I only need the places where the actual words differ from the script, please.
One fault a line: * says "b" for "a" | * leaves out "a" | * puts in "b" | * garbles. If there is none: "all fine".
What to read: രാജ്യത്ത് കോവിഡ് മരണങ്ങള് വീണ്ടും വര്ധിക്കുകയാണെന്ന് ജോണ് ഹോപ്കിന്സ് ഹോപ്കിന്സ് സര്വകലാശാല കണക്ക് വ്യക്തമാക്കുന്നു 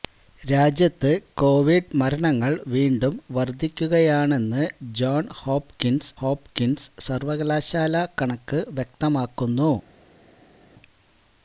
all fine